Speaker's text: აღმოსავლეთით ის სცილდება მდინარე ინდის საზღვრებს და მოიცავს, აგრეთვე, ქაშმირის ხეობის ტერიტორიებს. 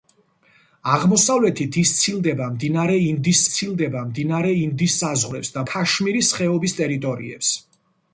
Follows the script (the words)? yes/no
no